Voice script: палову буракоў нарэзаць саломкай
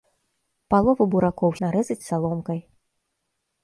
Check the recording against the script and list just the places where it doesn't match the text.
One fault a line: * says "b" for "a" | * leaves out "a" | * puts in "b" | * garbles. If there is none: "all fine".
all fine